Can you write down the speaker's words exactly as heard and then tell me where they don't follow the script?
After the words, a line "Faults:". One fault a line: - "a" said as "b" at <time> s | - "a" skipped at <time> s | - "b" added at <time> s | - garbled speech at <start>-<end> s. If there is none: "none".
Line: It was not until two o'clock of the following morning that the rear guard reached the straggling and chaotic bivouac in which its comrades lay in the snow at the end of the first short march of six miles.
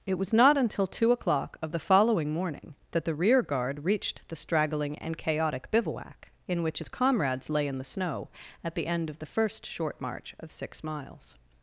It was not until two o'clock of the following morning that the rear guard reached the straggling and chaotic bivouac in which its comrades lay in the snow at the end of the first short march of six miles.
Faults:
none